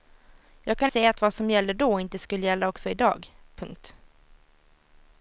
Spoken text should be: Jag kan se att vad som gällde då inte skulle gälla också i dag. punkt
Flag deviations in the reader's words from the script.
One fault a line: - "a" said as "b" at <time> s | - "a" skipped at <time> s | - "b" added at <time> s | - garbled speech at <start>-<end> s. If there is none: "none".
none